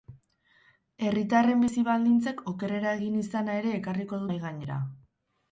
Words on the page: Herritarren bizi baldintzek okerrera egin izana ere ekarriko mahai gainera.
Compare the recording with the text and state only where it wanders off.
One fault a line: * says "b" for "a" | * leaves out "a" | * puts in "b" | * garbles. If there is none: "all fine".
all fine